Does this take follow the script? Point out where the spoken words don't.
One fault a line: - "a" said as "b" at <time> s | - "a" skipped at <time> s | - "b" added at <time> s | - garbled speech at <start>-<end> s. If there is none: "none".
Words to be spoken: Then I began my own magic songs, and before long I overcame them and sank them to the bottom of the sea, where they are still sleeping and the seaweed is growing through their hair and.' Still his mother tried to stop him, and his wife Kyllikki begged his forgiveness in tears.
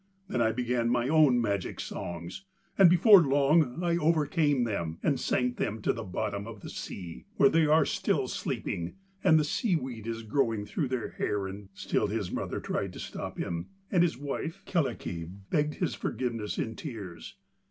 none